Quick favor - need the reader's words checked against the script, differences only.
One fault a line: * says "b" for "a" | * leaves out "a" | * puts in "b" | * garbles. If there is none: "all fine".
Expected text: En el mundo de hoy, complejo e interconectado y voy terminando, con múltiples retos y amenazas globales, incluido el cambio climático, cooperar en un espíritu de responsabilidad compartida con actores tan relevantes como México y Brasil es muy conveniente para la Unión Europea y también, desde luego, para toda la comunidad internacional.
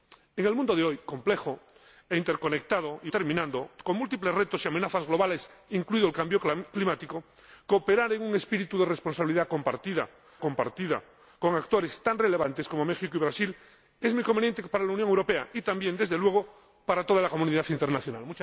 * leaves out "voy"
* puts in "compartida"